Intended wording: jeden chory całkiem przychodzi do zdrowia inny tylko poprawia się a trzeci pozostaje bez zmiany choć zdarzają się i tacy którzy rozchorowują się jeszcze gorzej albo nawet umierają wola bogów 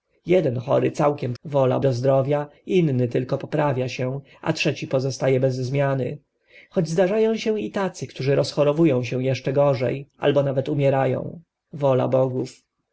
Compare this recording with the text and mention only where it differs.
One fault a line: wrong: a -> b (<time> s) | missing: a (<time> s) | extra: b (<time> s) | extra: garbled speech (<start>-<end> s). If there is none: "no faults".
wrong: przychodzi -> wola (1.4 s)